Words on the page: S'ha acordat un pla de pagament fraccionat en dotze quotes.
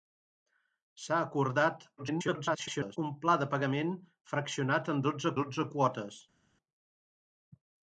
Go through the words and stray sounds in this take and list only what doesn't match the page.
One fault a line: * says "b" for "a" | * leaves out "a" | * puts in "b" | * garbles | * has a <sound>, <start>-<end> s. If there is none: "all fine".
* garbles
* puts in "dotze"